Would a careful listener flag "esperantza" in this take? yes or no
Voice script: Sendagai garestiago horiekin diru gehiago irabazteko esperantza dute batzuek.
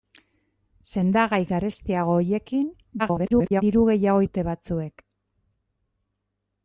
yes